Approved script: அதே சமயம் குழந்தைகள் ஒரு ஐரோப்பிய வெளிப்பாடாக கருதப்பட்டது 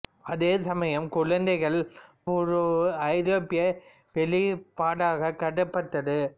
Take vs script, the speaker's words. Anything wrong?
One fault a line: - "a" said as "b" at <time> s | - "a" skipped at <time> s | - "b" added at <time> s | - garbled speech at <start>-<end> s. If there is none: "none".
none